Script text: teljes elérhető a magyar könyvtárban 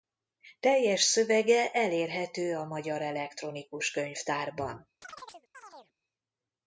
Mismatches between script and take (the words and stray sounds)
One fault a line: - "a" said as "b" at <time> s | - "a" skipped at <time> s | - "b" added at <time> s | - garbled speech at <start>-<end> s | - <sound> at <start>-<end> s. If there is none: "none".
- "szövege" added at 1.0 s
- "elektronikus" added at 3.0 s
- chirp at 5.0-5.9 s